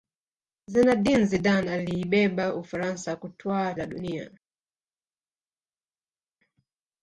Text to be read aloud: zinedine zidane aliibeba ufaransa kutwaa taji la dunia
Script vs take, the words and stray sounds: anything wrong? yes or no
yes